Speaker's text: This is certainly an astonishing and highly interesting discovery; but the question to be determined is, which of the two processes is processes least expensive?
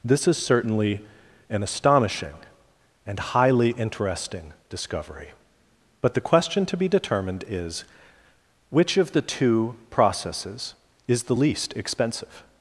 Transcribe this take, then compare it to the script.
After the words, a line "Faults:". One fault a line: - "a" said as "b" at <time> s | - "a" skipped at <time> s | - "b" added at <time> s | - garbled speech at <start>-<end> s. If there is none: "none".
This is certainly an astonishing and highly interesting discovery; but the question to be determined is, which of the two processes is the least expensive?
Faults:
- "processes" said as "the" at 11.2 s